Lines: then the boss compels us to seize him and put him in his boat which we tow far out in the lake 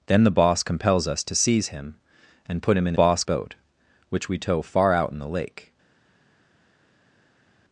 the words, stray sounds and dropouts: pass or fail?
fail